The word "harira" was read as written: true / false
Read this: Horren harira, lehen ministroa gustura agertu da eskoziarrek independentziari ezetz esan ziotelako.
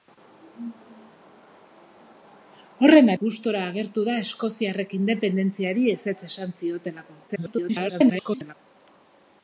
false